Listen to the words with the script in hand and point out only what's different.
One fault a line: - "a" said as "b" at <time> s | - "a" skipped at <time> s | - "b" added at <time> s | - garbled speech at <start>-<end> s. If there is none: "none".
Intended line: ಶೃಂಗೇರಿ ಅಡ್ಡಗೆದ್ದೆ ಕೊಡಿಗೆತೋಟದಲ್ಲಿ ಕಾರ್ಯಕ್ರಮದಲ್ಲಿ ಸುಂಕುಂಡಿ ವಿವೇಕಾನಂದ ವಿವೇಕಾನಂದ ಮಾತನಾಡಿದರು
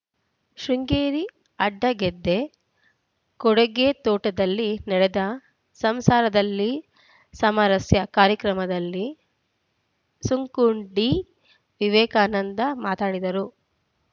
- "ನಡೆದ ಸಂಸಾರದಲ್ಲಿ ಸಾಮರಸ್ಯ" added at 4.9 s
- "ವಿವೇಕಾನಂದ" skipped at 12.6 s